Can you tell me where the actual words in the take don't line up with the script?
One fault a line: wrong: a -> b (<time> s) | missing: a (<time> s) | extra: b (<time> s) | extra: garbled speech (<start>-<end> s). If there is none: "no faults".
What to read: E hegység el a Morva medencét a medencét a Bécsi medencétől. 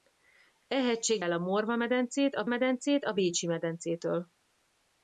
no faults